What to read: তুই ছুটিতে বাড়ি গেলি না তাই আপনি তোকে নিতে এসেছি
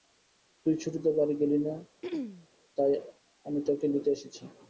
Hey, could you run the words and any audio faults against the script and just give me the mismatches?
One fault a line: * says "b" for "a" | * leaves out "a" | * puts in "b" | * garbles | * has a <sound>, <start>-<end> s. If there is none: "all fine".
* has a throat clearing, 2.0-2.5 s
* says "আমি" for "আপনি"